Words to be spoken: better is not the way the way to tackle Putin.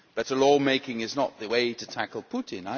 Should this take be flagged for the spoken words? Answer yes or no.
yes